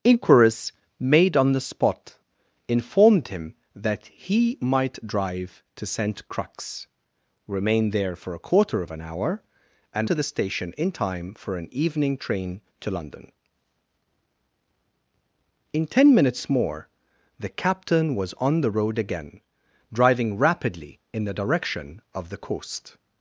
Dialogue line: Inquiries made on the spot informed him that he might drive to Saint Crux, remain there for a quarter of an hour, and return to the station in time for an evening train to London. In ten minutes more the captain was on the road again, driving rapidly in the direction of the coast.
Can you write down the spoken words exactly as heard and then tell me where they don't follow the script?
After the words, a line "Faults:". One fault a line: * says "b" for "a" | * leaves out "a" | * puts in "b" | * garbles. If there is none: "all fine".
Inquiries made on the spot informed him that he might drive to Saint Crux, remain there for a quarter of an hour, and to the station in time for an evening train to London. In ten minutes more the captain was on the road again, driving rapidly in the direction of the coast.
Faults:
* leaves out "return"